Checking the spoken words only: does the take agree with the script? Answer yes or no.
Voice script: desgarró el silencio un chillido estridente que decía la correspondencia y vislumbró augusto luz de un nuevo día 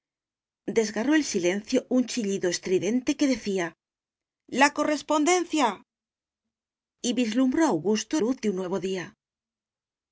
yes